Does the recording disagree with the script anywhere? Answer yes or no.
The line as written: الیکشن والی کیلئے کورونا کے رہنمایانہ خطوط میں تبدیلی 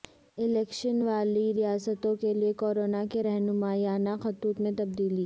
yes